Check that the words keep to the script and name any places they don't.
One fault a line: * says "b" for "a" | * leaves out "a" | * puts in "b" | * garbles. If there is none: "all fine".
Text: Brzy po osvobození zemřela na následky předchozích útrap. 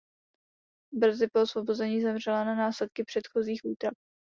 all fine